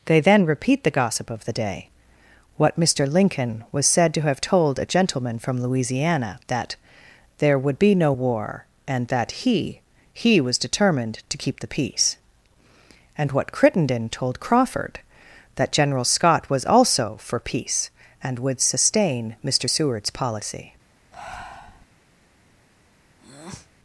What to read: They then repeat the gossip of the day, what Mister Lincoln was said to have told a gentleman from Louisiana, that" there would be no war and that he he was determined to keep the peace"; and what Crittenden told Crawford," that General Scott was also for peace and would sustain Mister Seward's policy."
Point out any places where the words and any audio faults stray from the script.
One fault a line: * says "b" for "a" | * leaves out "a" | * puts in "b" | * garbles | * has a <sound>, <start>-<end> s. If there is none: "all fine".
* has a breath, 21.1-21.9 s
* has a breath, 23.2-23.7 s